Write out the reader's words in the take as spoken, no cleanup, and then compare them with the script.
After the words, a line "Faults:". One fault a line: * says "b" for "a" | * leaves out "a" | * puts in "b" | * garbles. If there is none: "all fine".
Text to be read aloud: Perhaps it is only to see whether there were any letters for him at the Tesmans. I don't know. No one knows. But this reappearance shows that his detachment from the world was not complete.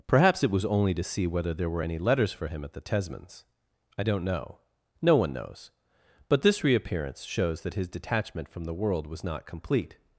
Perhaps it was only to see whether there were any letters for him at the Tesmans. I don't know. No one knows. But this reappearance shows that his detachment from the world was not complete.
Faults:
* says "was" for "is"